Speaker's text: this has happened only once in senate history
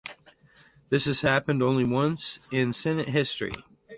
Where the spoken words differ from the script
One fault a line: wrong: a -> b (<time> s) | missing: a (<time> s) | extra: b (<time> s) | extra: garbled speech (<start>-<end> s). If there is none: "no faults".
no faults